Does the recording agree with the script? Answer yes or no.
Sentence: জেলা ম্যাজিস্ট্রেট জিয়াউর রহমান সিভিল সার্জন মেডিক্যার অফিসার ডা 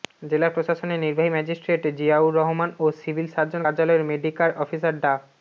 no